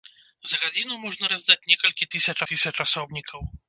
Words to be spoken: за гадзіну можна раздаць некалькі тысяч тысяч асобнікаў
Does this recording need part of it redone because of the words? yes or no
no